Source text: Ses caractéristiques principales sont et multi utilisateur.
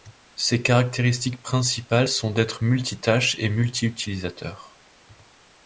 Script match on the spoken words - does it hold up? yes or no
no